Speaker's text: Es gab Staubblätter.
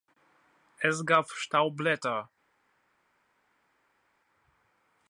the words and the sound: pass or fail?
pass